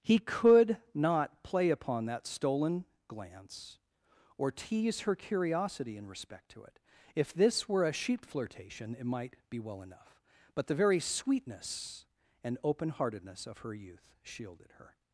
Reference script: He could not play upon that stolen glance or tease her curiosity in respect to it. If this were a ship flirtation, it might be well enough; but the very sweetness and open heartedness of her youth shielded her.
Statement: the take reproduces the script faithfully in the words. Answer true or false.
false